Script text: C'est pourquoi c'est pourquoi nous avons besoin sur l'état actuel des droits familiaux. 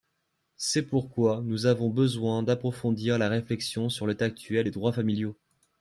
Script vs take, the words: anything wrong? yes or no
yes